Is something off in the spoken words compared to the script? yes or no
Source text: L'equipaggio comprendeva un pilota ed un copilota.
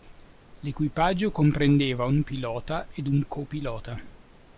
no